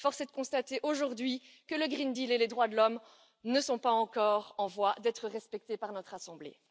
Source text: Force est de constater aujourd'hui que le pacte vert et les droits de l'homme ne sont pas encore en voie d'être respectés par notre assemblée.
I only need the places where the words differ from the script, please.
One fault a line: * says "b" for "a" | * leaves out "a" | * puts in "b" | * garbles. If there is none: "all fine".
all fine